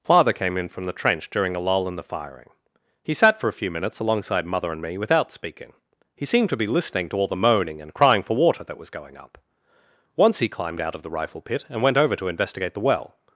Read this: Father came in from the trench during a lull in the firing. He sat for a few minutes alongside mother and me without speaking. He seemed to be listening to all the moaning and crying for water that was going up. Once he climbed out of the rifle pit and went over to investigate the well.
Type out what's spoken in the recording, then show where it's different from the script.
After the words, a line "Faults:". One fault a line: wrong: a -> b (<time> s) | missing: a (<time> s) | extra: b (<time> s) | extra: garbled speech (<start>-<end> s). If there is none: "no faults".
Father came in from the trench during a lull in the firing. He sat for a few minutes alongside mother and me without speaking. He seemed to be listening to all the moaning and crying for water that was going up. Once he climbed out of the rifle pit and went over to investigate the well.
Faults:
no faults